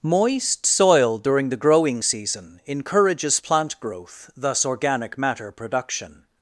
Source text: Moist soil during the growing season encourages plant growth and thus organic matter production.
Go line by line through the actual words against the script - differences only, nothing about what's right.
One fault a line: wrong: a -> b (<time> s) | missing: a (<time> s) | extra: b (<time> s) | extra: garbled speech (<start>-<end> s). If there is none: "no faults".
missing: and (4.3 s)